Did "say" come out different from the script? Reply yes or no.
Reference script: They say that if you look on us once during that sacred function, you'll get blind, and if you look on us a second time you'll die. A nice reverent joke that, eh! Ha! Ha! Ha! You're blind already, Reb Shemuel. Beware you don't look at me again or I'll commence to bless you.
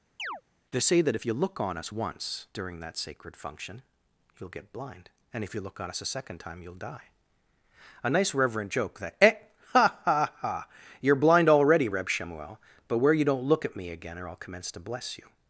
no